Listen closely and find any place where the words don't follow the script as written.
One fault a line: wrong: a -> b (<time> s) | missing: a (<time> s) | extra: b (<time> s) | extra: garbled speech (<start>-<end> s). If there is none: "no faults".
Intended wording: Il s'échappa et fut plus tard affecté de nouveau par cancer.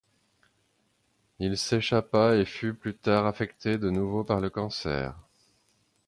extra: le (4.4 s)